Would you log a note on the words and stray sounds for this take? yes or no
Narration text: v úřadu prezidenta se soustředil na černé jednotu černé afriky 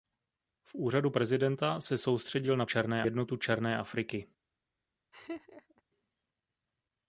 yes